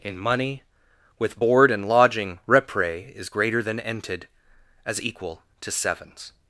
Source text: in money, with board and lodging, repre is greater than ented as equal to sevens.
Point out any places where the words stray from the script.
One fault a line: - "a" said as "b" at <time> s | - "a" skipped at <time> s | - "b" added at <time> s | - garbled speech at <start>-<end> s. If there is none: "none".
none